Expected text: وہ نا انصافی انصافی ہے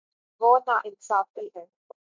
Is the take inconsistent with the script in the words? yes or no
yes